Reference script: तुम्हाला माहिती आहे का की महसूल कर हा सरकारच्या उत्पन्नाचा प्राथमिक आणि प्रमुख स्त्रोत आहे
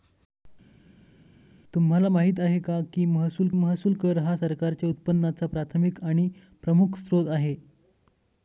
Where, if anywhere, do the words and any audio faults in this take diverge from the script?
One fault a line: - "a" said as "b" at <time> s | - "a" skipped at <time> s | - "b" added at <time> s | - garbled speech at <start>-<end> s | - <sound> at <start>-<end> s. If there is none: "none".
- "महसूल" added at 3.5 s